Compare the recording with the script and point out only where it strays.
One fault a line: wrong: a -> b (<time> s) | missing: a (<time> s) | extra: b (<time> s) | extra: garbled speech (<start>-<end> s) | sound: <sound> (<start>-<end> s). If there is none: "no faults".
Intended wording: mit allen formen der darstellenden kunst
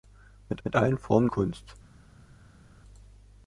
extra: mit (0.6 s)
missing: der darstellenden (1.3 s)